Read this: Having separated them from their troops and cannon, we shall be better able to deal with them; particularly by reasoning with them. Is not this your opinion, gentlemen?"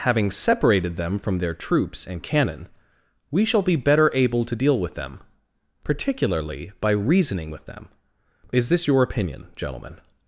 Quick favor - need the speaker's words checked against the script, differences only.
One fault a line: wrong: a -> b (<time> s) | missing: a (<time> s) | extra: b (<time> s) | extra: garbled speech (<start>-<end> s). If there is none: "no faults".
missing: not (8.7 s)